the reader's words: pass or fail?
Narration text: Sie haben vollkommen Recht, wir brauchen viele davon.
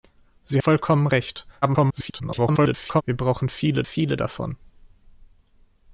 fail